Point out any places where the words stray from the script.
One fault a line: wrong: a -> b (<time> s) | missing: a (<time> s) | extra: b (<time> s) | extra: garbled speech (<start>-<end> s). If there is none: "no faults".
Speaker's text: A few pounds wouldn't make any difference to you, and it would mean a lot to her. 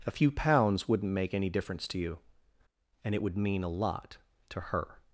no faults